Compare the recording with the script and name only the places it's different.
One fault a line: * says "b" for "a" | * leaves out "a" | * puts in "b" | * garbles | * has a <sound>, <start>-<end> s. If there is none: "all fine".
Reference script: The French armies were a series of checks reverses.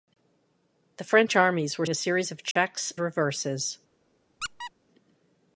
* has a dropout, 2.5-2.6 s
* has a squeak, 4.4-4.7 s